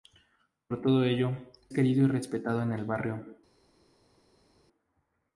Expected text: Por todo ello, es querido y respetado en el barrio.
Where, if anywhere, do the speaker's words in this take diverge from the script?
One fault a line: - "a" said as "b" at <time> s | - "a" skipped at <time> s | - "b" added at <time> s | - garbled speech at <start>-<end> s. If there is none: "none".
- "es" skipped at 1.5 s